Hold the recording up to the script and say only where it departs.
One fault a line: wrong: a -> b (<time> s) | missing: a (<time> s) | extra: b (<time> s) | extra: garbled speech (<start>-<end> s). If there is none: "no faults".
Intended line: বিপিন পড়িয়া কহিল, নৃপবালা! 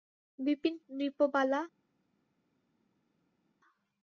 missing: পড়িয়া কহিল (0.8 s)